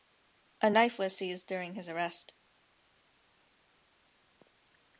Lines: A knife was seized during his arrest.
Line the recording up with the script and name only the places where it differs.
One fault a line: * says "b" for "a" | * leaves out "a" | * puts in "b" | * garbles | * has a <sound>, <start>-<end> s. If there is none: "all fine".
all fine